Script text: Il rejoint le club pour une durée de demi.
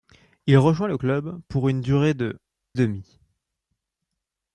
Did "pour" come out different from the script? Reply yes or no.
no